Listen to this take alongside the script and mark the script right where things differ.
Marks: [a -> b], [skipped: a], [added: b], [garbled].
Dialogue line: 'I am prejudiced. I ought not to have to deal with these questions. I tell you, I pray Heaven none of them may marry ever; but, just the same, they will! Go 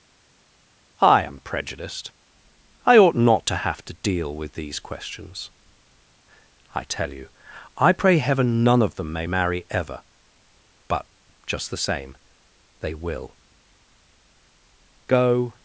'I am prejudiced. I ought not to have to deal with these questions. I tell you, I pray Heaven none of them may marry ever; but, just the same, they will! Go